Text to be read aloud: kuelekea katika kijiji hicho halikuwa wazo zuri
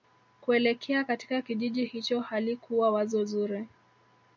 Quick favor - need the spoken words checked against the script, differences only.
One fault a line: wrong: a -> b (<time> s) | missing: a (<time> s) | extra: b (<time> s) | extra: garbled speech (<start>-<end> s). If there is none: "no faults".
no faults